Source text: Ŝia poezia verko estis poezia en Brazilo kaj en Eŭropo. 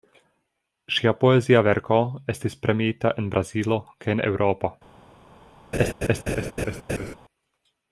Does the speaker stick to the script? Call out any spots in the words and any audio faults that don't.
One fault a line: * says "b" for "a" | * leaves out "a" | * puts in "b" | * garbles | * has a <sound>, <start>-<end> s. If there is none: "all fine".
* says "premiita" for "poezia"
* has a laugh, 5.7-7.2 s